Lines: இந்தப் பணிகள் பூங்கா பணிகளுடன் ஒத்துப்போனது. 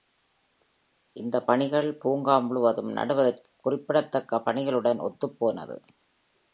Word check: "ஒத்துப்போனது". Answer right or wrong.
right